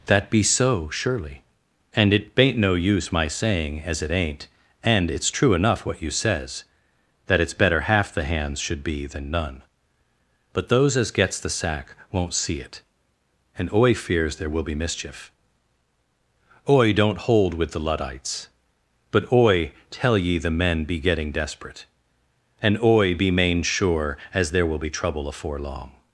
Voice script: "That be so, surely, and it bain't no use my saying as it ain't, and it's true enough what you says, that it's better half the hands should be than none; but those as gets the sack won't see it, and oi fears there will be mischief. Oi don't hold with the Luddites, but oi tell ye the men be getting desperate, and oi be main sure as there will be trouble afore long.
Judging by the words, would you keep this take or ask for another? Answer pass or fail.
pass